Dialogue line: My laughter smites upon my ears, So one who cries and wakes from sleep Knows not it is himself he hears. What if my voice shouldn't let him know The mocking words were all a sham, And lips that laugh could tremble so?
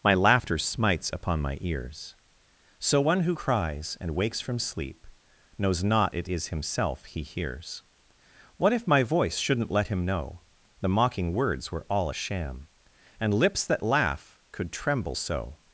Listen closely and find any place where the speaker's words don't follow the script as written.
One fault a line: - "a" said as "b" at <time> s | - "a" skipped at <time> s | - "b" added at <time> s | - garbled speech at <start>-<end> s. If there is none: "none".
none